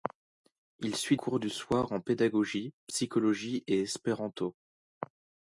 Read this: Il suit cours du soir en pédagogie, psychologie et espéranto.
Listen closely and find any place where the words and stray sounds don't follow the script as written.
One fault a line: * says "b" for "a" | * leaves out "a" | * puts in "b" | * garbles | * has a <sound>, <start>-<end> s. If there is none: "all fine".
all fine